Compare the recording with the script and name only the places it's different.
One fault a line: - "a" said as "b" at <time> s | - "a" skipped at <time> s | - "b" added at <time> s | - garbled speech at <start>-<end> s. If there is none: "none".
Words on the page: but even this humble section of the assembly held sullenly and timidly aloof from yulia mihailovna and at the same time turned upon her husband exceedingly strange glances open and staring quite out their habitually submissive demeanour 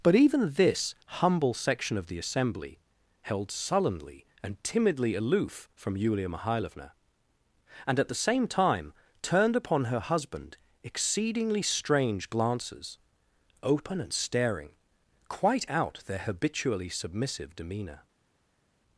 none